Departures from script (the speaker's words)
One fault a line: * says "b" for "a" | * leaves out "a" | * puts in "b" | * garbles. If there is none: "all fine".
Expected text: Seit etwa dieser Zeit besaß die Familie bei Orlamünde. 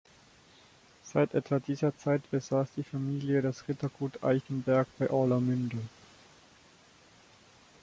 * puts in "das Rittergut Eichenberg"